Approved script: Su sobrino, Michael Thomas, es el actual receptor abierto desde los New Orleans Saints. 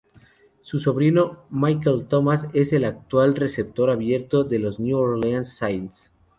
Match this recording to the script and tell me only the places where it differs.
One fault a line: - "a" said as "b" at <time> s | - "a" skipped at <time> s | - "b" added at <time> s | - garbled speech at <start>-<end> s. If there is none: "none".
- "desde" said as "de" at 4.4 s